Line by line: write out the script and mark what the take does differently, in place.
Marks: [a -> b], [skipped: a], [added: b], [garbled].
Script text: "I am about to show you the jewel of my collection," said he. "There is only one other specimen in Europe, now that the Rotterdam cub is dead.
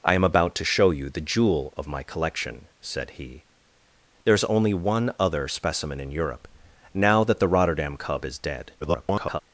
"I am about to show you the jewel of my collection," said he. "There is only one other specimen in Europe, now that the Rotterdam cub is dead. [garbled]